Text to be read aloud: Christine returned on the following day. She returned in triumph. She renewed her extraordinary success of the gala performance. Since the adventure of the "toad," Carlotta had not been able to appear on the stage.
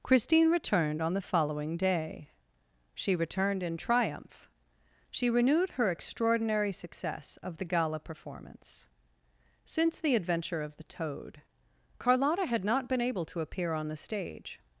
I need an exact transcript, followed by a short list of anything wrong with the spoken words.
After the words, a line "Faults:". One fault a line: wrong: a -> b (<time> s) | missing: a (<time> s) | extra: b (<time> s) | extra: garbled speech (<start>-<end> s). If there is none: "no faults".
Christine returned on the following day. She returned in triumph. She renewed her extraordinary success of the gala performance. Since the adventure of the "toad," Carlotta had not been able to appear on the stage.
Faults:
no faults